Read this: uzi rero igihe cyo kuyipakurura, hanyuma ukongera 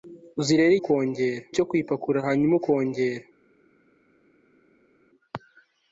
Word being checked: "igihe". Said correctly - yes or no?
no